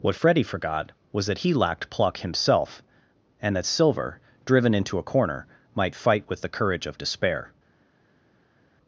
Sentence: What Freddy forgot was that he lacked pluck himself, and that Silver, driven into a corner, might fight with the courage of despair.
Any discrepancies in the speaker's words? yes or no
no